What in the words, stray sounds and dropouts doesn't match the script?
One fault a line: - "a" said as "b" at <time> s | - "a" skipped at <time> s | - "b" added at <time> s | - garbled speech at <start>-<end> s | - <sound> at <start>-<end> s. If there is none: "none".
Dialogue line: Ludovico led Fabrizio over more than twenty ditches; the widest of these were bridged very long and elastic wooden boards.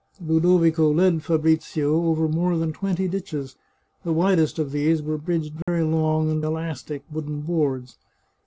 - dropout at 5.6-5.7 s